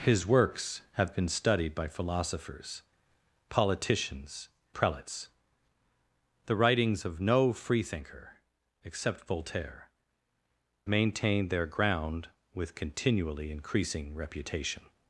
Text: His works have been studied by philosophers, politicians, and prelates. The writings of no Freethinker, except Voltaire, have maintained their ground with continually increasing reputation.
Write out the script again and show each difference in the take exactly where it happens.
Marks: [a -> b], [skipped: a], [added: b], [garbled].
His works have been studied by philosophers, politicians, [skipped: and] prelates. The writings of no Freethinker, except Voltaire, [skipped: have] maintained their ground with continually increasing reputation.